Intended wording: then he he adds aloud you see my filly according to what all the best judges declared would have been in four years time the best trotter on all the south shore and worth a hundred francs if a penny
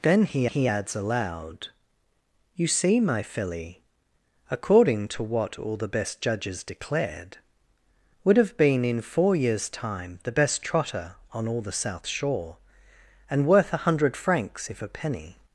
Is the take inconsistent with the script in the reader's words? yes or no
no